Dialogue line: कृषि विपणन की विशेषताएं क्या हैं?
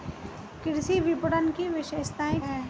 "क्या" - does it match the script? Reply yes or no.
no